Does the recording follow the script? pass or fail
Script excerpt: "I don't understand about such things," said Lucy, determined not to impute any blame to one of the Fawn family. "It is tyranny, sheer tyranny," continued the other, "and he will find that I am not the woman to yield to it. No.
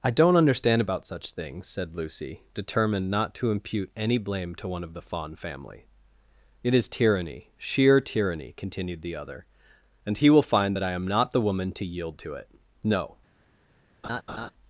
pass